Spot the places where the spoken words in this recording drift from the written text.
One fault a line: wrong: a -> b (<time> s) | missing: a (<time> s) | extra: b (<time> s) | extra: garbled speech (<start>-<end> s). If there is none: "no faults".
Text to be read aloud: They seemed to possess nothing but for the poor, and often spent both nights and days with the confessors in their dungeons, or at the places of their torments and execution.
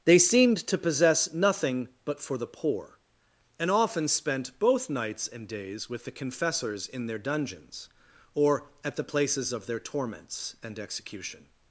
no faults